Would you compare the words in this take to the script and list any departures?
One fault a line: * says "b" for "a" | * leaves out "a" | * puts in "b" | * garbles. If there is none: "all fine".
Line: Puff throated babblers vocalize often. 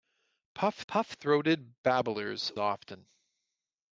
* puts in "puff"
* leaves out "vocalize"